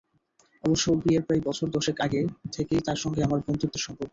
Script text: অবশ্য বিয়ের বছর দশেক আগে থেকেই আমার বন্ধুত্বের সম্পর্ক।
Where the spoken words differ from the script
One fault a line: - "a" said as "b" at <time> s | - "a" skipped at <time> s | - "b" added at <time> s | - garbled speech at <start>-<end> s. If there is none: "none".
- "প্রায়" added at 1.3 s
- "তাঁর সঙ্গে" added at 2.9 s